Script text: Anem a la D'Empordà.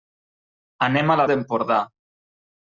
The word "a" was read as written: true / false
true